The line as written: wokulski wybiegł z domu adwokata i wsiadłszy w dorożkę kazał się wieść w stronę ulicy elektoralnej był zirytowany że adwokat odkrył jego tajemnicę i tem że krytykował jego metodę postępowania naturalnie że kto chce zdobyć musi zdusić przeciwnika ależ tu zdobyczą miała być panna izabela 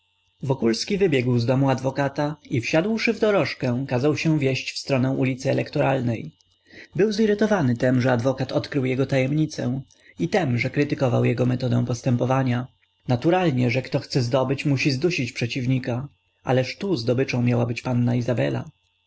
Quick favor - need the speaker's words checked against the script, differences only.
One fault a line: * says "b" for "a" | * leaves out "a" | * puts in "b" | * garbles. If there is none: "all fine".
* puts in "tem"